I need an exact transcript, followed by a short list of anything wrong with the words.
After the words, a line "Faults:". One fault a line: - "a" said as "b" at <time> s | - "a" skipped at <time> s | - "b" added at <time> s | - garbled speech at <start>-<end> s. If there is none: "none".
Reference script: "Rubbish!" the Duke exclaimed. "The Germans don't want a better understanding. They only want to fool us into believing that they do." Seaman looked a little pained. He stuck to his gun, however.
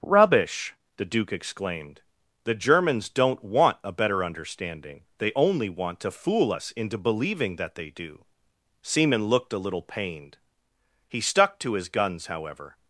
"Rubbish!" the Duke exclaimed. "The Germans don't want a better understanding. They only want to fool us into believing that they do." Seaman looked a little pained. He stuck to his guns, however.
Faults:
- "gun" said as "guns" at 11.9 s